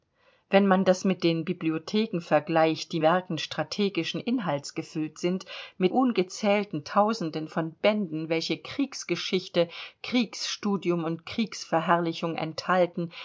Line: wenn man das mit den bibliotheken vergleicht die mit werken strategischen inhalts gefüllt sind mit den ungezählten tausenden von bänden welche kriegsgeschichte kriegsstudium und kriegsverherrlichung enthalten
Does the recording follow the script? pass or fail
fail